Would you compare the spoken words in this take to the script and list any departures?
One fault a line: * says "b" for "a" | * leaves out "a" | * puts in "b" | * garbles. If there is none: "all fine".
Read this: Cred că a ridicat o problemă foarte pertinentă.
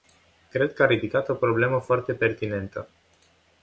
all fine